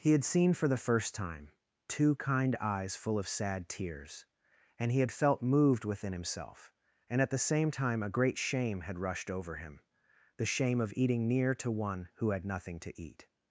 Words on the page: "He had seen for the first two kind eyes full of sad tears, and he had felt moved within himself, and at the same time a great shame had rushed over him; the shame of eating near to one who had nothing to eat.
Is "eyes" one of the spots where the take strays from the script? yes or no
no